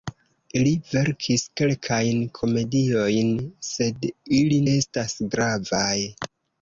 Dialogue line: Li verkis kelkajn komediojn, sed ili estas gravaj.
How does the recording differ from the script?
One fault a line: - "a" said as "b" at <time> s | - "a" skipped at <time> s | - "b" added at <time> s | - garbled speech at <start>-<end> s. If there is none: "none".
none